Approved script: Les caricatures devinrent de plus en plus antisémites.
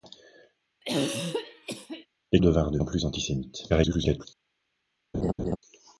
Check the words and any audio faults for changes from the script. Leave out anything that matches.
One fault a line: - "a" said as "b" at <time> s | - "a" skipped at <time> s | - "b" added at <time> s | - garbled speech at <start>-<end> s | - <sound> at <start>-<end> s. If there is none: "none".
- throat clearing at 0.8-2.1 s
- "caricatures" skipped at 2.4 s
- "plus" skipped at 2.8 s
- garbled speech at 3.7-4.3 s
- laugh at 5.1-5.6 s